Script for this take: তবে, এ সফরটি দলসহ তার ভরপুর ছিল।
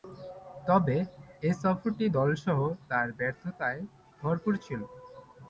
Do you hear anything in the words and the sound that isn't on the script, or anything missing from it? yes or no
yes